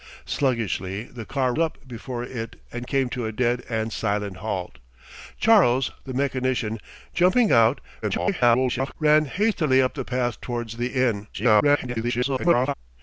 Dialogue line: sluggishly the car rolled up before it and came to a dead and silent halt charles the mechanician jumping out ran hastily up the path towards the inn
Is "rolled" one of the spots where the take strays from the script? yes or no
yes